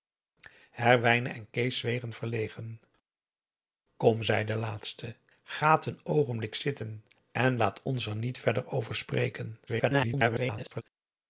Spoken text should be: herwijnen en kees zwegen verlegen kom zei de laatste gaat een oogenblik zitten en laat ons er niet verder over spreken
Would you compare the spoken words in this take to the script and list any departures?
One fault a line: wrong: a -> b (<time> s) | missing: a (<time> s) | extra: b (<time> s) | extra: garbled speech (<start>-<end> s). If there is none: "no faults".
extra: garbled speech (9.7-10.8 s)